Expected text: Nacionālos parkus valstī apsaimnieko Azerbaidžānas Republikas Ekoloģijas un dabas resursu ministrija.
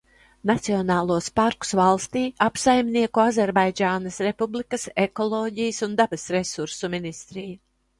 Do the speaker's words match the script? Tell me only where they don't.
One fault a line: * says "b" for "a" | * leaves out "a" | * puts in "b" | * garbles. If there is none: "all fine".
all fine